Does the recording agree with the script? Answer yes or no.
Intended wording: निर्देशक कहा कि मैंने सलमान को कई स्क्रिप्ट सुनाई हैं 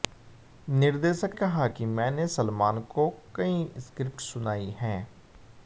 yes